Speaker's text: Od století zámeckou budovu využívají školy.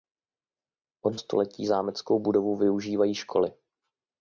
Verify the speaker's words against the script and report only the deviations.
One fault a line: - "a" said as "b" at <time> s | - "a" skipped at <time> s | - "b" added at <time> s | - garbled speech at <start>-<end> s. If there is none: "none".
none